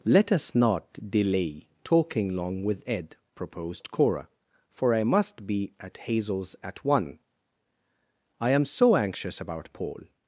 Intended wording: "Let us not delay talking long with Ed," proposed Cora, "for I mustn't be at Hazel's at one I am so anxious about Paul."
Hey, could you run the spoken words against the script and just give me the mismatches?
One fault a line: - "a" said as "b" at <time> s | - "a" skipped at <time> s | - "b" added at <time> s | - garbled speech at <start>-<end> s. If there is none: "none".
- "mustn't" said as "must" at 5.0 s